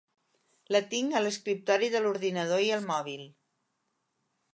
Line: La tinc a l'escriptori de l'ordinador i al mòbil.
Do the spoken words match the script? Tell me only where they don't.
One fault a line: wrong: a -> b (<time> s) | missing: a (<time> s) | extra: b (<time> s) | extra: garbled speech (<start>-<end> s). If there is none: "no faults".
no faults